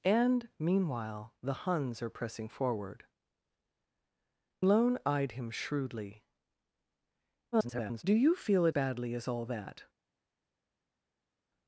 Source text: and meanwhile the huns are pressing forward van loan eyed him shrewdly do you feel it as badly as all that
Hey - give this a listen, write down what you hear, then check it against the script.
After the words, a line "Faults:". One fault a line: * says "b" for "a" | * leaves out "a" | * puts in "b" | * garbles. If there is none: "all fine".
and meanwhile the huns are pressing forward loan eyed him shrewdly [garbled] do you feel it badly as all that
Faults:
* leaves out "van"
* garbles
* leaves out "as"